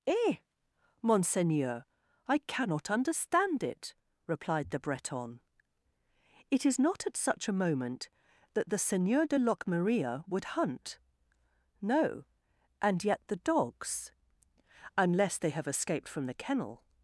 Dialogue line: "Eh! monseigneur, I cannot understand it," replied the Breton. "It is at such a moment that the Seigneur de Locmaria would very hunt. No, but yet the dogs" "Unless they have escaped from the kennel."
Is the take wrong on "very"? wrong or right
wrong